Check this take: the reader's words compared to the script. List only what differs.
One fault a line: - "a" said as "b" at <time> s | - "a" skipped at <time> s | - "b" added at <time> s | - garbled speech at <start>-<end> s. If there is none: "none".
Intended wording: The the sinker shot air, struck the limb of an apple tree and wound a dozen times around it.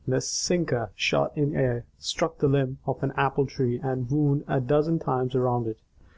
- "the" skipped at 0.2 s
- "in" added at 1.4 s